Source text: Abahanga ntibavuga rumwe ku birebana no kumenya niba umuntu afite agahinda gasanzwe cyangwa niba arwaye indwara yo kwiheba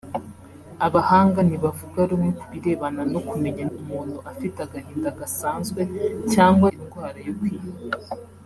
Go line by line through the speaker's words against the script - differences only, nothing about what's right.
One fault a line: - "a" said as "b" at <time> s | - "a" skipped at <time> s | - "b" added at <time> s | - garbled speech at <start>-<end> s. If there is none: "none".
- "niba" skipped at 3.6 s
- "niba arwaye" skipped at 6.7 s